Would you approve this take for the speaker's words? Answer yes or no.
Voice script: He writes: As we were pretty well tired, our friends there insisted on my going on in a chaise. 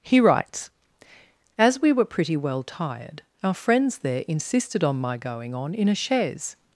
yes